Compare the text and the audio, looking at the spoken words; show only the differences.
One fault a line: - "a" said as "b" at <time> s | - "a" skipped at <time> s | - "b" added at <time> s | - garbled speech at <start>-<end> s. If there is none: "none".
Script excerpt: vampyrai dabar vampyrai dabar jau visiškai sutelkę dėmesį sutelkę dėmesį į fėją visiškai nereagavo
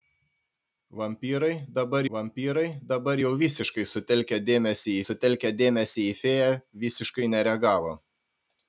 none